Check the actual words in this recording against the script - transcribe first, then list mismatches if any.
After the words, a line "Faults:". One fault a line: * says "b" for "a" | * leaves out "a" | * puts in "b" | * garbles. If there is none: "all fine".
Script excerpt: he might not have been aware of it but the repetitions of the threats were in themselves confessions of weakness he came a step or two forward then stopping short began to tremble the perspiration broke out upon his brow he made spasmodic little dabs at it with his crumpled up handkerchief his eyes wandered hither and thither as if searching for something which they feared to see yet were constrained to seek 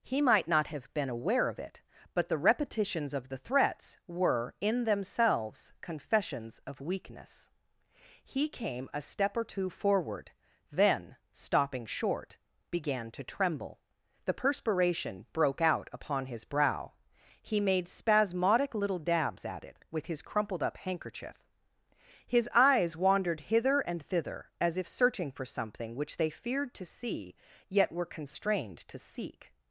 he might not have been aware of it but the repetitions of the threats were in themselves confessions of weakness he came a step or two forward then stopping short began to tremble the perspiration broke out upon his brow he made spasmodic little dabs at it with his crumpled up handkerchief his eyes wandered hither and thither as if searching for something which they feared to see yet were constrained to seek
Faults:
all fine